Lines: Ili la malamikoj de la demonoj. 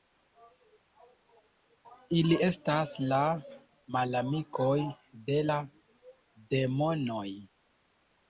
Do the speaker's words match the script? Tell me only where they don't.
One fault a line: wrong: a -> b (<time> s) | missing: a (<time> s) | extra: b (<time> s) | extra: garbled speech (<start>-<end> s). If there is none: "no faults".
extra: estas (2.5 s)